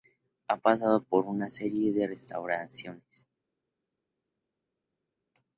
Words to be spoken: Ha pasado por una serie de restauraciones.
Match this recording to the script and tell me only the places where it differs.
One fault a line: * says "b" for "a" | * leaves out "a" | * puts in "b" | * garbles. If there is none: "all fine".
all fine